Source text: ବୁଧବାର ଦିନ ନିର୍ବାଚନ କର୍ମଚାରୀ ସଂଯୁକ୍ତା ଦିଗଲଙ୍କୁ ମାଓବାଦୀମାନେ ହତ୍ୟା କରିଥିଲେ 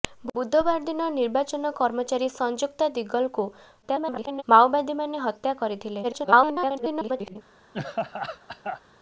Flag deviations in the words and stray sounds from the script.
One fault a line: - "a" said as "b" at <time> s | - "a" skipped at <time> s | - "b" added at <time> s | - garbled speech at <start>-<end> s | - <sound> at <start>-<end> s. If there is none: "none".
- garbled speech at 3.8-4.4 s
- garbled speech at 6.0-7.4 s
- laugh at 7.7-8.8 s